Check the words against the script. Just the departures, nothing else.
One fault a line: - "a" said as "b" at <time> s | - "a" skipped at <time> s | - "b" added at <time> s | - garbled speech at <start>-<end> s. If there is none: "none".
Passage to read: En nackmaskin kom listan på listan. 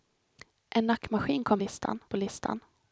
none